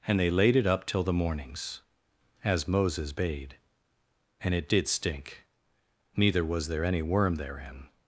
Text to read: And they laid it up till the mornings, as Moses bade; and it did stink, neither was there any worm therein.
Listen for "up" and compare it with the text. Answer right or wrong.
right